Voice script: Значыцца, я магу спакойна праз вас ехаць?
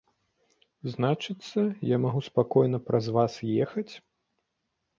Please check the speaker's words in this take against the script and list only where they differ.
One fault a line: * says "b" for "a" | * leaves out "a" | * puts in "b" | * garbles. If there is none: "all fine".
all fine